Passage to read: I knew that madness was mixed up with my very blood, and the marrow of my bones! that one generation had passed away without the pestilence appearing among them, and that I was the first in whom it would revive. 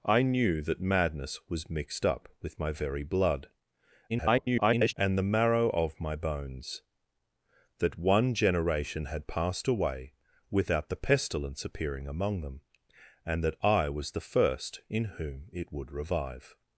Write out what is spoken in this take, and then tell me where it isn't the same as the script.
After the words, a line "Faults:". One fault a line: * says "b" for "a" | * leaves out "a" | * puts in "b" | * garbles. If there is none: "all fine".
I knew that madness was mixed up with my very blood, [garbled] and the marrow of my bones! that one generation had passed away without the pestilence appearing among them, and that I was the first in whom it would revive.
Faults:
* garbles